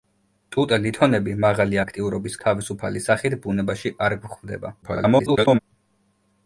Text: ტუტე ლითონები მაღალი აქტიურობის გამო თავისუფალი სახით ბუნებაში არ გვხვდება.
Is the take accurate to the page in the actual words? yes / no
no